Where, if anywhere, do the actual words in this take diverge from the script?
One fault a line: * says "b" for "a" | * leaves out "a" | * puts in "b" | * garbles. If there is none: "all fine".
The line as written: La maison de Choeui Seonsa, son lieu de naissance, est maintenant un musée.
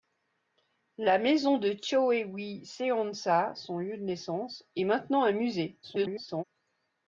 * garbles